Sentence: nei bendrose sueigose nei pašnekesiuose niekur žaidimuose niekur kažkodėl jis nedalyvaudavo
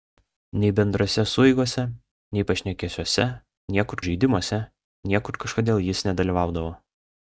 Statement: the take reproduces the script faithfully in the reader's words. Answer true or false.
true